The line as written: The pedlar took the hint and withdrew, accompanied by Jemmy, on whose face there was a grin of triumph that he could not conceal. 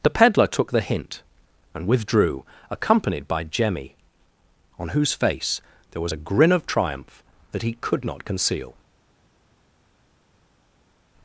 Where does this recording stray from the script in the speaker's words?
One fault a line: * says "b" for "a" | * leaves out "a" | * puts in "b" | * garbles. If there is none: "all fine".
all fine